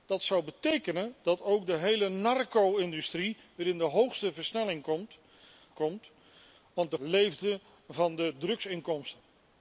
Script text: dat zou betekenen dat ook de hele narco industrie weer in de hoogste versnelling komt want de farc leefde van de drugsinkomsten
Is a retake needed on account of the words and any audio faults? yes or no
yes